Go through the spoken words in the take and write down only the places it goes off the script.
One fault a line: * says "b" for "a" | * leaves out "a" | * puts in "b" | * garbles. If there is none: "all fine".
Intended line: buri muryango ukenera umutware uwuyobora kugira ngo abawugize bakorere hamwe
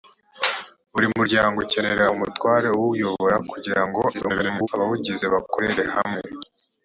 * garbles